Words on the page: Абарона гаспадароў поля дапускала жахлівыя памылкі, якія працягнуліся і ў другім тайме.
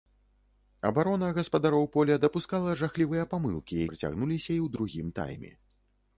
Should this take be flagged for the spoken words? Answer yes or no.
yes